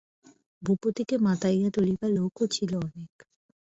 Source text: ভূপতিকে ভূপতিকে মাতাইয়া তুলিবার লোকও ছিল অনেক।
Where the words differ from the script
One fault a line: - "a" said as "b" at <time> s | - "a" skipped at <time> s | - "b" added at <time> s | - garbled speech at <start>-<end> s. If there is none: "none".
- "ভূপতিকে" skipped at 1.1 s